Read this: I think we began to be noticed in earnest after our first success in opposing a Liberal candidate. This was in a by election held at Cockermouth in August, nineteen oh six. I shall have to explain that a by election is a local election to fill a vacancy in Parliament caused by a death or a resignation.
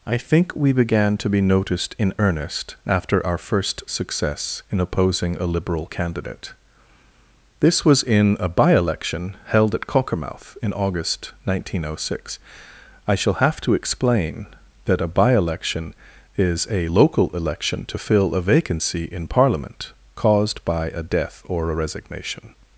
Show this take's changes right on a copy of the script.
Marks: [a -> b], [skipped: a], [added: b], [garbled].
I think we began to be noticed in earnest after our first success in opposing a Liberal candidate. This was in a by election held at Cockermouth in August, nineteen oh six. I shall have to explain that a by election is a local election to fill a vacancy in Parliament caused by a death or a resignation.